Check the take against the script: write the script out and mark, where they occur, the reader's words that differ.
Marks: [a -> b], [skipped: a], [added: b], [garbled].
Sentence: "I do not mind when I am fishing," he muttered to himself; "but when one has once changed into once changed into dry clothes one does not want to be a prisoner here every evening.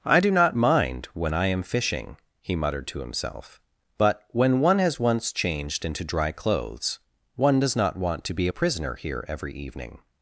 "I do not mind when I am fishing," he muttered to himself; "but when one has once changed into [skipped: once changed into] dry clothes one does not want to be a prisoner here every evening.